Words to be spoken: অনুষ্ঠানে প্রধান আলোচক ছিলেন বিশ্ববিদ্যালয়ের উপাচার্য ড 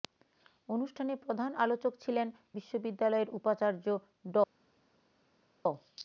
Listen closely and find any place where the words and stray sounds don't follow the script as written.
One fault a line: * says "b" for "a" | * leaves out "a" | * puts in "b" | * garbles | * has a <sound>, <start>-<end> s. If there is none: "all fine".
all fine